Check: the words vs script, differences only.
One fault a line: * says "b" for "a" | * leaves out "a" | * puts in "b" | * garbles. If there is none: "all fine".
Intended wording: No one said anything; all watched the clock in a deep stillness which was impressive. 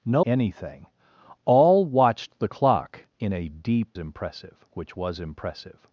* leaves out "one said"
* says "impressive" for "stillness"